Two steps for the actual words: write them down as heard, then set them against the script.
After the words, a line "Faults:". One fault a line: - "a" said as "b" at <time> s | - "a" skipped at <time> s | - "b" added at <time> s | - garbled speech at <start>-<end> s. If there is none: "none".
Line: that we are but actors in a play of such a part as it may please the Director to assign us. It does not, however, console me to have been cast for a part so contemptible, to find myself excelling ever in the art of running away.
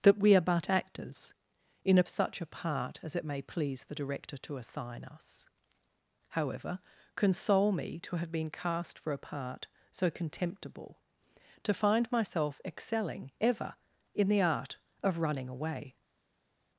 that we are but actors in a such a part as it may please the Director to assign us. However, console me to have been cast for a part so contemptible, to find myself excelling ever in the art of running away.
Faults:
- "play of" skipped at 2.0 s
- "It does not" skipped at 5.5 s